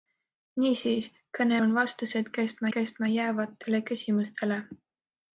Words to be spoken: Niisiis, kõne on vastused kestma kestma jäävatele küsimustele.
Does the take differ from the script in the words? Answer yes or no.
no